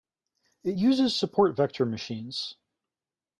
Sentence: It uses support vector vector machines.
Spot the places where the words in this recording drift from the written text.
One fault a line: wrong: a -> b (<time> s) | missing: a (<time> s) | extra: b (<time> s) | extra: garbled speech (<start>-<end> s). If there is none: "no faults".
missing: vector (1.8 s)